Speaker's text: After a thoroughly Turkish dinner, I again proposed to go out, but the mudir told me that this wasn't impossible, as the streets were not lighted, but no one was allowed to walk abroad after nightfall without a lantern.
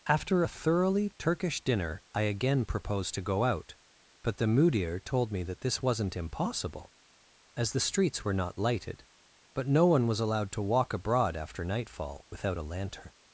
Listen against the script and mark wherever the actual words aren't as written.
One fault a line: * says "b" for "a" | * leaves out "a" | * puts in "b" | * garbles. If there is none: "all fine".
all fine